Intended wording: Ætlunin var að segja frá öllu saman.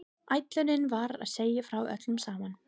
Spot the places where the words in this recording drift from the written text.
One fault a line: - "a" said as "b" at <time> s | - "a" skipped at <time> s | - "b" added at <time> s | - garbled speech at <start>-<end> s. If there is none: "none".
none